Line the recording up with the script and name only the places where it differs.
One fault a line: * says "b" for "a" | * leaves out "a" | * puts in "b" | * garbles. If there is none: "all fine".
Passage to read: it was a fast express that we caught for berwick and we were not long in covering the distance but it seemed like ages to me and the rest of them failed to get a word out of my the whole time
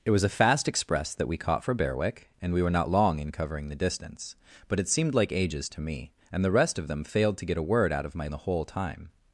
all fine